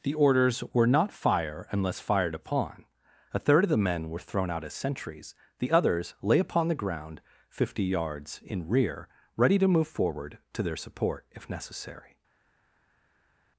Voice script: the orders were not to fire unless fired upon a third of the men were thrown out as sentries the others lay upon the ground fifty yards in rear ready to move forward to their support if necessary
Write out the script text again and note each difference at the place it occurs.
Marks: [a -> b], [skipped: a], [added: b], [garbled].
the orders were not [skipped: to] fire unless fired upon a third of the men were thrown out as sentries the others lay upon the ground fifty yards in rear ready to move forward to their support if necessary